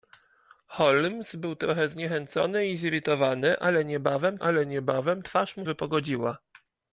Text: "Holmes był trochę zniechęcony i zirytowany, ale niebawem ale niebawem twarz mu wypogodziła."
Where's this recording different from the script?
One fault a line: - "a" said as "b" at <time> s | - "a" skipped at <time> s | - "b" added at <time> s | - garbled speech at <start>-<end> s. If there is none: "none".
none